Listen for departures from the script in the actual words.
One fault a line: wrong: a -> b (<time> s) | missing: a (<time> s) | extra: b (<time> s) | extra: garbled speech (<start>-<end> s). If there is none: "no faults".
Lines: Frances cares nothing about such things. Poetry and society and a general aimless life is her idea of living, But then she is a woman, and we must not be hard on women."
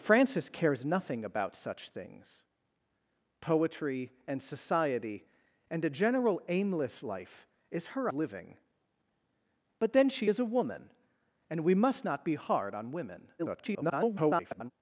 missing: idea of (8.1 s)
extra: garbled speech (13.4-14.7 s)